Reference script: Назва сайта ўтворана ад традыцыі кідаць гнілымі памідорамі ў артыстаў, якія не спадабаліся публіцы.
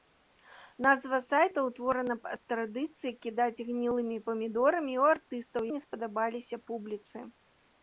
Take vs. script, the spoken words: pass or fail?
fail